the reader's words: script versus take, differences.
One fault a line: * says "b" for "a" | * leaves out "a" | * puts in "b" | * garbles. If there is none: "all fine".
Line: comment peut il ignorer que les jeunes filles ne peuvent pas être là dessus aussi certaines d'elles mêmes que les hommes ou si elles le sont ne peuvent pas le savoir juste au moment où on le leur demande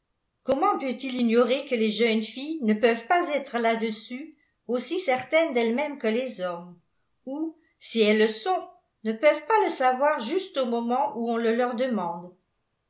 all fine